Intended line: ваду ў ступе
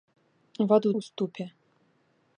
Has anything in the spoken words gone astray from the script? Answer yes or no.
no